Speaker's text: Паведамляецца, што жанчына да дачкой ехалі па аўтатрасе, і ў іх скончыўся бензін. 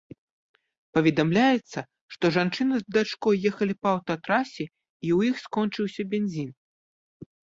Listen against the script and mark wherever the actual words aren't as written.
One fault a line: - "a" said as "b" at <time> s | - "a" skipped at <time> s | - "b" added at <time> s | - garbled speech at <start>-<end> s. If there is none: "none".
- "да" said as "з" at 2.8 s